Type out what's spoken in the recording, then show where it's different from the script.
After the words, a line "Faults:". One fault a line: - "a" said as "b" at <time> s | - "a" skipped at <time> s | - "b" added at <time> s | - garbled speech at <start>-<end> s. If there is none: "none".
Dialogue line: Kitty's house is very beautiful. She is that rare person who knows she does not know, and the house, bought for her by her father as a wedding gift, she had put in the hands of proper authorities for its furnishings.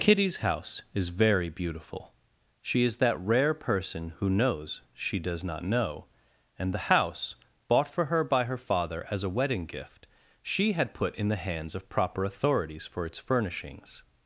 Kitty's house is very beautiful. She is that rare person who knows she does not know, and the house, bought for her by her father as a wedding gift, she had put in the hands of proper authorities for its furnishings.
Faults:
none